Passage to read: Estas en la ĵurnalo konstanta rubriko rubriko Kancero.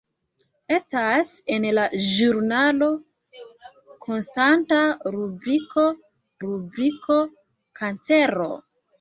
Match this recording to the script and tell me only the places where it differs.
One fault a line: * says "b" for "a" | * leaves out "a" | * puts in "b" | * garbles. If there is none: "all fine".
all fine